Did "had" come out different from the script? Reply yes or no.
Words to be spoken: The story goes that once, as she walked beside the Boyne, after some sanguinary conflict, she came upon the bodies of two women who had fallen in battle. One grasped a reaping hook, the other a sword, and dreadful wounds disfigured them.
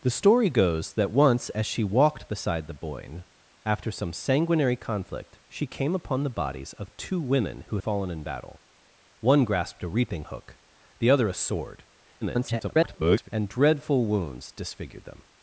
yes